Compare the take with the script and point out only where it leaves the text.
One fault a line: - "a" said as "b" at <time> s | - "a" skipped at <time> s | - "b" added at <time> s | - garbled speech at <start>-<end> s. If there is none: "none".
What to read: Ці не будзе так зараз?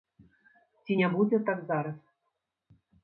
none